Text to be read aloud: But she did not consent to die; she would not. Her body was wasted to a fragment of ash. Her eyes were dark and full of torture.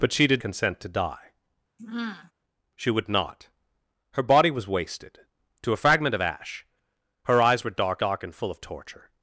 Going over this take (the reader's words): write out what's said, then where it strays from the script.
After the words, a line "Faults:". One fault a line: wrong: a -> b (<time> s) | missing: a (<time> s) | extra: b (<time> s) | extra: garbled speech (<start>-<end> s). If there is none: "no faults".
But she did consent to die; she would not. Her body was wasted to a fragment of ash. Her eyes were dark dark and full of torture.
Faults:
missing: not (0.4 s)
extra: dark (8.0 s)